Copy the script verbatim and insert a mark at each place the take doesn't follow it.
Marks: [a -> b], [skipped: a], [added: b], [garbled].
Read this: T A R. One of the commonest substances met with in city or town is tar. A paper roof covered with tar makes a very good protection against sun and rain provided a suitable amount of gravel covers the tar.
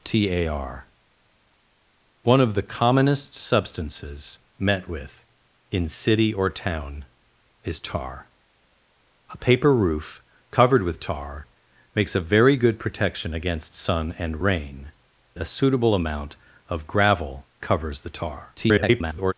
T A R. One of the commonest substances met with in city or town is tar. A paper roof covered with tar makes a very good protection against sun and rain [skipped: provided] a suitable amount of gravel covers the tar. [garbled]